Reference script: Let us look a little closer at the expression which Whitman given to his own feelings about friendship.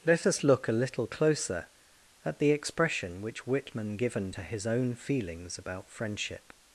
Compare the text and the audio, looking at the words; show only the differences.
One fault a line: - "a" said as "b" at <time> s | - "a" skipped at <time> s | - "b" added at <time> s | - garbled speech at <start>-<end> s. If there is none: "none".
none